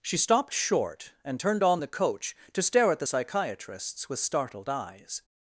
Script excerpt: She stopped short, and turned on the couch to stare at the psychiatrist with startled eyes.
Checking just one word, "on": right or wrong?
right